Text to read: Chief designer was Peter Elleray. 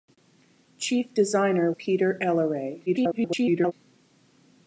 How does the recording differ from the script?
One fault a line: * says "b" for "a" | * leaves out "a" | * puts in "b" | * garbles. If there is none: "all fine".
* leaves out "was"
* garbles